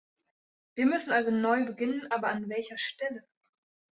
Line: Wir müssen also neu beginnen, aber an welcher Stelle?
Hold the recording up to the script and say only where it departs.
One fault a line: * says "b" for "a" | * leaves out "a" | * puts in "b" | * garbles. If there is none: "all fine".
all fine